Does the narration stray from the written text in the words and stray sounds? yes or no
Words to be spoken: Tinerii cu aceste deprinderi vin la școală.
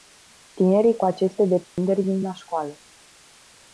yes